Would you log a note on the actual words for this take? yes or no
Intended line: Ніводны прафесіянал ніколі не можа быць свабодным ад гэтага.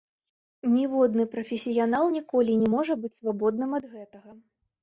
no